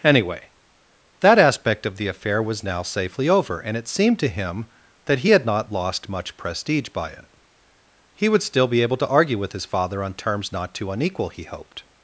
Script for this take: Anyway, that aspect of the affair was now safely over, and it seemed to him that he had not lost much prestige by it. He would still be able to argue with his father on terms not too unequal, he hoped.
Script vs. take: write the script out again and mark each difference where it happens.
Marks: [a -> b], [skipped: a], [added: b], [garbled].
Anyway, that aspect of the affair was now safely over, and it seemed to him that he had not lost much prestige by it. He would still be able to argue with his father on terms not too unequal, he hoped.